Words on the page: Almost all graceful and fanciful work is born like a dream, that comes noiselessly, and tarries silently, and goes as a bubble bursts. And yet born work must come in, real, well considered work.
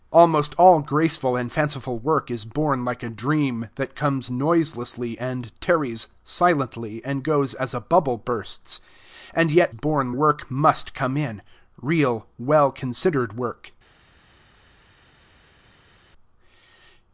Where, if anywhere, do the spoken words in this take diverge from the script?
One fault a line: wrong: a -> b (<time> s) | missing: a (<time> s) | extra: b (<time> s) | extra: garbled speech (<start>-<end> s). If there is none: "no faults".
no faults